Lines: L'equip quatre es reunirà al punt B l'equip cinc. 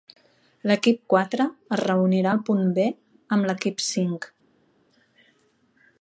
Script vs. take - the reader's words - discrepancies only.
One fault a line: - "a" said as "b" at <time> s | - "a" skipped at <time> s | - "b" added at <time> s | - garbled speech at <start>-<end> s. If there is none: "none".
- "amb" added at 3.4 s